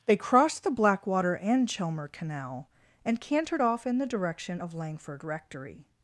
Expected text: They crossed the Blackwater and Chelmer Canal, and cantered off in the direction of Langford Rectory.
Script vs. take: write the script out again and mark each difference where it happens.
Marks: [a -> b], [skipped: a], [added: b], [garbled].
They crossed the Blackwater and Chelmer Canal, and cantered off in the direction of Langford Rectory.